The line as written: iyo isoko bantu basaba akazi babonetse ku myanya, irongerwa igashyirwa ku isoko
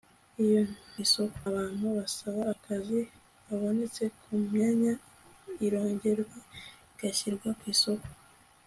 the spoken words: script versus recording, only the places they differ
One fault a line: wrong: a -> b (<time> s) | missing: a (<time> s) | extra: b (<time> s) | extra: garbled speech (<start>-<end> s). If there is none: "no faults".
no faults